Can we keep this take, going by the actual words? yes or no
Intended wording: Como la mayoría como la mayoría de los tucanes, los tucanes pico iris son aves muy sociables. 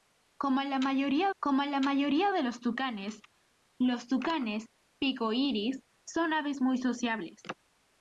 yes